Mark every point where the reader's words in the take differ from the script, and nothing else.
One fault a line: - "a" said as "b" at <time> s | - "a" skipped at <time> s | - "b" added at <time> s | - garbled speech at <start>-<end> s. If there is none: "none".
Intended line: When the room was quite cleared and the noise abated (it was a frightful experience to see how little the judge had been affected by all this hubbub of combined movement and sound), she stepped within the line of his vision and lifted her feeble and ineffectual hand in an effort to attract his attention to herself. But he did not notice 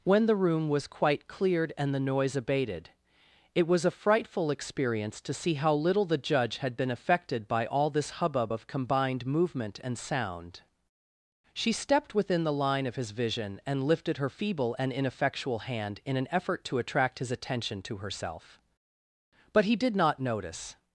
none